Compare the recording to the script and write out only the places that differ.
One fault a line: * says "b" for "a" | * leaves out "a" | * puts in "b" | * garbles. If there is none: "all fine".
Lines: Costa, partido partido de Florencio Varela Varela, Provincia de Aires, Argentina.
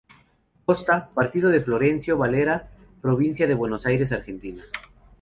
* leaves out "partido"
* leaves out "Varela"
* puts in "Buenos"